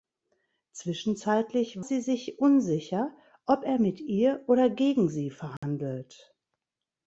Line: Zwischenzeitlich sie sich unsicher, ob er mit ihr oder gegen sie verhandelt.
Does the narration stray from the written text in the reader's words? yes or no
no